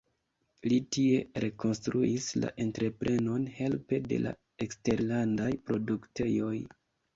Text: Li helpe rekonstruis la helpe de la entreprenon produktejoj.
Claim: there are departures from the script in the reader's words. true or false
true